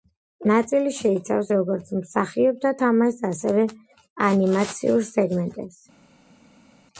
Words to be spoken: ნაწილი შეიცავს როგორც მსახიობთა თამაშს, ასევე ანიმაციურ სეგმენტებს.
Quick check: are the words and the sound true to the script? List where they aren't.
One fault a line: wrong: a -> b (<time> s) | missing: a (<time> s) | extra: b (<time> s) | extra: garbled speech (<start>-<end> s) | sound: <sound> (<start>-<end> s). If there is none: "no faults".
no faults